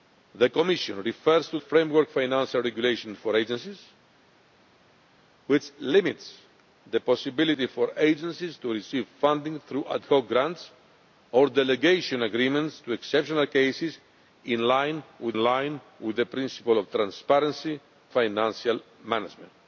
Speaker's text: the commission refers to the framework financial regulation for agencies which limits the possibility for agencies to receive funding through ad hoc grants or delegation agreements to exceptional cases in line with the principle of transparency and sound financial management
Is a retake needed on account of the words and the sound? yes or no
yes